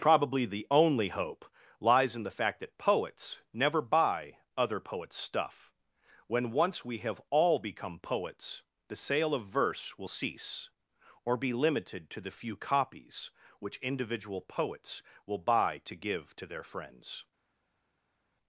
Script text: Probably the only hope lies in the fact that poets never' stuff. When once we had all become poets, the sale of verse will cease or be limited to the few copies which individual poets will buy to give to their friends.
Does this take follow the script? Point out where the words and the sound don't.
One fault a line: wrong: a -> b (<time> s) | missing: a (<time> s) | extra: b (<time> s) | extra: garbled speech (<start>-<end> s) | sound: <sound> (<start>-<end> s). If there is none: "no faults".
extra: buy other poets (3.8 s)
wrong: had -> have (7.0 s)